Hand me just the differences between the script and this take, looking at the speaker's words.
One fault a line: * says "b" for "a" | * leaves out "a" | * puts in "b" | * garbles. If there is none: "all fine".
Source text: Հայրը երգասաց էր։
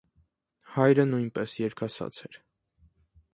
* puts in "նույնպես"